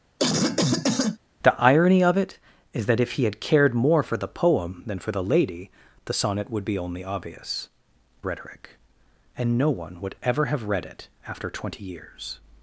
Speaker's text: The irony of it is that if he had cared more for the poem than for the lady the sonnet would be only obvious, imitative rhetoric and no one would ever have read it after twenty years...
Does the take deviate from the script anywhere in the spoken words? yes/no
yes